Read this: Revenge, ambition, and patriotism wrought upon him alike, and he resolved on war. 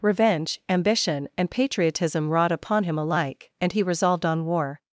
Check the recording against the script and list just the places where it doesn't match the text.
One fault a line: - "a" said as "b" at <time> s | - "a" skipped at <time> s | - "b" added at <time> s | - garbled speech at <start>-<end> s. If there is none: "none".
none